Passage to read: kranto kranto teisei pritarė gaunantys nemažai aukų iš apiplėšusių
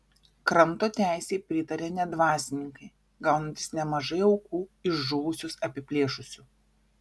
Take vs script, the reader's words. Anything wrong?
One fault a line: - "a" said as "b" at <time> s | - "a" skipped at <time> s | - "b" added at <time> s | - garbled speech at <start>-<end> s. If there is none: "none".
- "kranto" skipped at 0.9 s
- "net dvasininkai" added at 2.0 s
- "žuvusius" added at 5.1 s